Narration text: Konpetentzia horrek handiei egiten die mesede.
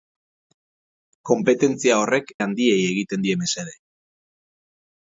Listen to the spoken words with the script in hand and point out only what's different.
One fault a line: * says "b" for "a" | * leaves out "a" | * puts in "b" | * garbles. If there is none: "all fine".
all fine